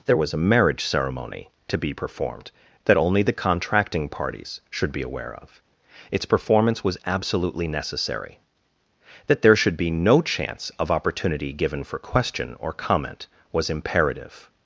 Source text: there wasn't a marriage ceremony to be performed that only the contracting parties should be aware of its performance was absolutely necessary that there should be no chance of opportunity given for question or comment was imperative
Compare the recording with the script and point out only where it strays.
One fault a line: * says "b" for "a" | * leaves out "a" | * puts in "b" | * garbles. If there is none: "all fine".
* says "was" for "wasn't"